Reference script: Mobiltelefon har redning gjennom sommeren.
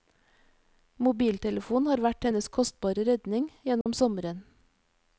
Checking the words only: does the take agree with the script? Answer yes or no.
no